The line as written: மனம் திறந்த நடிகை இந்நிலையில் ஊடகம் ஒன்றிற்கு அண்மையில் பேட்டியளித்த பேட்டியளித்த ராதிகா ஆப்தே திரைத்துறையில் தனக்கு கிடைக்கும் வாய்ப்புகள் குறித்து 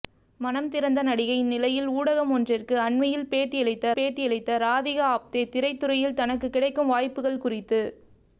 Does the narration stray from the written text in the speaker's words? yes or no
no